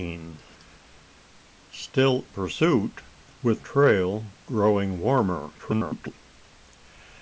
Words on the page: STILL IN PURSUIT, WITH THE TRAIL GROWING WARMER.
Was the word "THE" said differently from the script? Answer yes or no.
yes